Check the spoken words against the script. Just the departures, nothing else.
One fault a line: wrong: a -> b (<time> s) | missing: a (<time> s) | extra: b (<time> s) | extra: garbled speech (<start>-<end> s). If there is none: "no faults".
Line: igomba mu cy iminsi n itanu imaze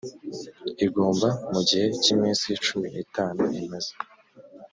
extra: gihe (1.7 s)
extra: cumi (2.6 s)